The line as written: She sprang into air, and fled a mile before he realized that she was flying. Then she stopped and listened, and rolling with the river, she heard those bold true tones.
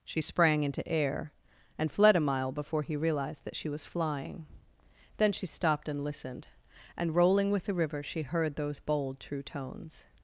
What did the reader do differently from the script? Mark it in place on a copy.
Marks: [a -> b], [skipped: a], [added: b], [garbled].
She sprang into air, and fled a mile before he realized that she was flying. Then she stopped and listened, and rolling with the river, she heard those bold true tones.